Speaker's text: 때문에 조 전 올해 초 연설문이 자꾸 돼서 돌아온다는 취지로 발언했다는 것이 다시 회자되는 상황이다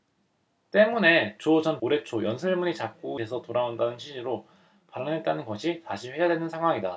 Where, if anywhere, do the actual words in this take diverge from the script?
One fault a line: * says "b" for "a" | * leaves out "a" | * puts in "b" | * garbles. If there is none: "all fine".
all fine